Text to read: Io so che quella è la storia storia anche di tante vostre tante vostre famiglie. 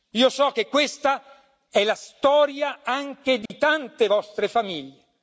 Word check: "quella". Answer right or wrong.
wrong